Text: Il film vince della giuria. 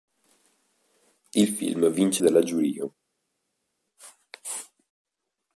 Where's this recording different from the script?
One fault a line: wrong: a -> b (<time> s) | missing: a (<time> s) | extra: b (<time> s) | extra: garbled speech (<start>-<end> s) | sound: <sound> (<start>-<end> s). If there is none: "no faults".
no faults